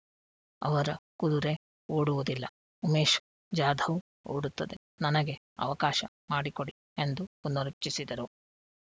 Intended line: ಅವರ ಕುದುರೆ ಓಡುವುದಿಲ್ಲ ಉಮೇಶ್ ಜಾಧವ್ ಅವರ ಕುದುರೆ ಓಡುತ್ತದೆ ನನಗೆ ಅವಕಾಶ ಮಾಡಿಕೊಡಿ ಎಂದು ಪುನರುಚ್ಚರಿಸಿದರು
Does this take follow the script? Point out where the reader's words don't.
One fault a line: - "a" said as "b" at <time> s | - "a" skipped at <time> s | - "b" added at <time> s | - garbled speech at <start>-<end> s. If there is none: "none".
- "ಅವರ ಕುದುರೆ" skipped at 4.0 s